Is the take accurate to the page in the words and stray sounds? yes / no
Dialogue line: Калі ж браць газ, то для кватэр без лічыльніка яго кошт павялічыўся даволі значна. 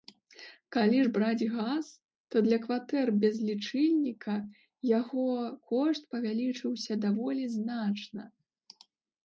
yes